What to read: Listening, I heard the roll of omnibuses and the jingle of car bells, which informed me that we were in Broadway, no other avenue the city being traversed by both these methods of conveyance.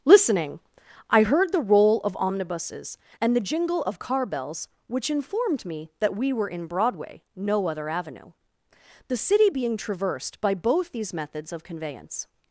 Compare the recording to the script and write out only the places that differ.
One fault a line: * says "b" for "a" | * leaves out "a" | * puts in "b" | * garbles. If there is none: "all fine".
all fine